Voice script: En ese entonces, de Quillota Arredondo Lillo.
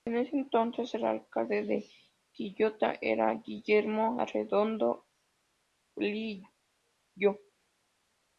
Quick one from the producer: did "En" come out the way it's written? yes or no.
yes